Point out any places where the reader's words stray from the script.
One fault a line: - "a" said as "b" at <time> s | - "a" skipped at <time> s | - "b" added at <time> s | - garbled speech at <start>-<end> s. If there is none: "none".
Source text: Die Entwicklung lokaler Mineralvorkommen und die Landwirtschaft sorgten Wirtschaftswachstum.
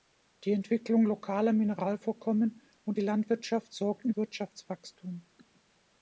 none